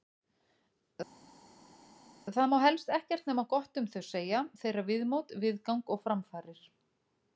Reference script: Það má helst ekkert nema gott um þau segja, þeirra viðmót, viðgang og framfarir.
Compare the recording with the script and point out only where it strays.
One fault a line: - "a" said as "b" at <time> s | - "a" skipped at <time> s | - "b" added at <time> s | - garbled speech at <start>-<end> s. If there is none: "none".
none